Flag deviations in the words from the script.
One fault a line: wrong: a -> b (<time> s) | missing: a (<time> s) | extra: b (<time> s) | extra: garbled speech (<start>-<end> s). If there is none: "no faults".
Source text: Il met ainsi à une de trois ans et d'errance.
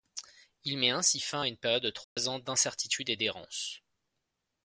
extra: fin (1.2 s)
extra: période (1.6 s)
extra: d'incertitude (2.4 s)